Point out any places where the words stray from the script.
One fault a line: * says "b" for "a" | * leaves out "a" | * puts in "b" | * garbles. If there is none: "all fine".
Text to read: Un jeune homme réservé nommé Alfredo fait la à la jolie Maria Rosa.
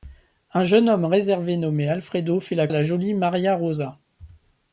all fine